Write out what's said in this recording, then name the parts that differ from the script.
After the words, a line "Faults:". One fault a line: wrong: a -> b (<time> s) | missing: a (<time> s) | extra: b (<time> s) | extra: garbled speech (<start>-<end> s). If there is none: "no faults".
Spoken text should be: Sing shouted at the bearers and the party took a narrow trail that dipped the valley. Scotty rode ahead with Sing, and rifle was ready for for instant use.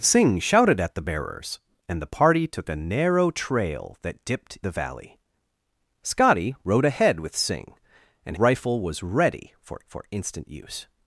Sing shouted at the bearers and the party took a narrow trail that dipped the valley. Scotty rode ahead with Sing, and rifle was ready for for instant use.
Faults:
no faults